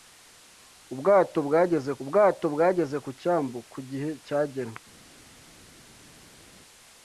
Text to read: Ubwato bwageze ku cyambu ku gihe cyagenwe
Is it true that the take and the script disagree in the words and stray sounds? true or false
true